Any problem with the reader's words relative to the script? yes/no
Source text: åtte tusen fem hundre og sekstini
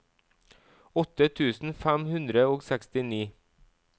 no